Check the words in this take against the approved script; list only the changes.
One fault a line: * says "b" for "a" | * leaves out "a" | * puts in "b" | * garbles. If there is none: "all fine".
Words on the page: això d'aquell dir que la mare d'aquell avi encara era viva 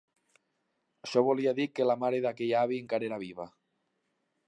* says "volia" for "d'aquell"